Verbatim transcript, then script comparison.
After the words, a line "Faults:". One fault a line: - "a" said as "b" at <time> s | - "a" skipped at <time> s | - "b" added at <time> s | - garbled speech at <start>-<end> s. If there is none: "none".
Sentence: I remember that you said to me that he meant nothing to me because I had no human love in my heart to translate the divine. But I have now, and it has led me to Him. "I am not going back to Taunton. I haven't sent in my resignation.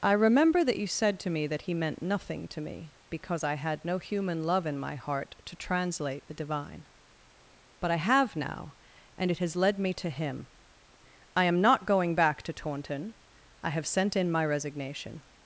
I remember that you said to me that he meant nothing to me because I had no human love in my heart to translate the divine. But I have now, and it has led me to Him. "I am not going back to Taunton. I have sent in my resignation.
Faults:
- "haven't" said as "have" at 13.7 s